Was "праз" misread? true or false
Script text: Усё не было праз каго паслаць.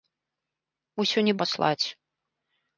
true